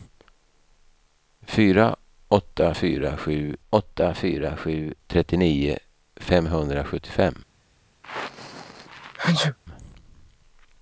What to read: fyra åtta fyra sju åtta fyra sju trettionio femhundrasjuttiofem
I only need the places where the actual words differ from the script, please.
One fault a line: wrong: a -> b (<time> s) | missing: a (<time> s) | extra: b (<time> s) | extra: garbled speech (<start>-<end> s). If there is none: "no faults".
no faults